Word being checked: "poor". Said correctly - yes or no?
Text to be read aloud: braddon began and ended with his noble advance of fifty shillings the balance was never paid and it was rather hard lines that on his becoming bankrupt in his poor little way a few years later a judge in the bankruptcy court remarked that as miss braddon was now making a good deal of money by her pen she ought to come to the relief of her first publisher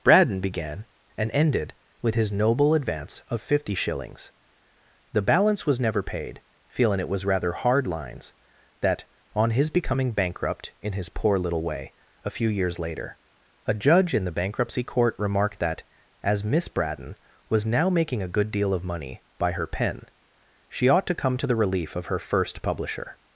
yes